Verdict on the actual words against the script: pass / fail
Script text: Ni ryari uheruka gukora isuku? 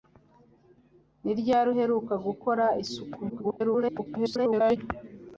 fail